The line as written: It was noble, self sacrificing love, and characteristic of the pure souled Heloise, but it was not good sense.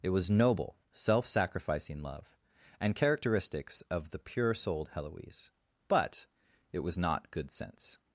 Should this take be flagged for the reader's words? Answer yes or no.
yes